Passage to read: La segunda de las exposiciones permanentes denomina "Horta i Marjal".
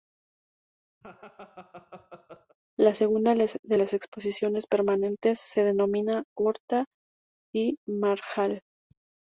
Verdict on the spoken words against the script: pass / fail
fail